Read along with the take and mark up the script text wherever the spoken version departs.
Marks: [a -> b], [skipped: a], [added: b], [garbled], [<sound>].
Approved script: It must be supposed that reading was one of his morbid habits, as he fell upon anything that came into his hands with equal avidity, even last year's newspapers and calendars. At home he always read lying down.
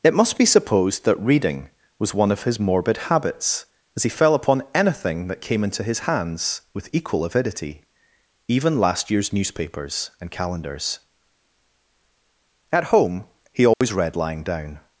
It must be supposed that reading was one of his morbid habits, as he fell upon anything that came into his hands with equal avidity, even last year's newspapers and calendars. At home he always [dropout] read lying down.